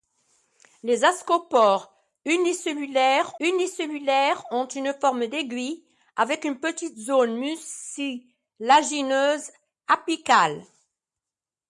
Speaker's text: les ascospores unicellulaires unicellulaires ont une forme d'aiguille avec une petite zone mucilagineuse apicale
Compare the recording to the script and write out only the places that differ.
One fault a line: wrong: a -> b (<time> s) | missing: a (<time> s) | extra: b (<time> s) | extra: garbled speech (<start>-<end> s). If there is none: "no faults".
no faults